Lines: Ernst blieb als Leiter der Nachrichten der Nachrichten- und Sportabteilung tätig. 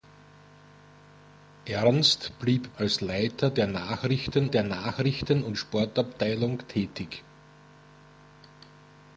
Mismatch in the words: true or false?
false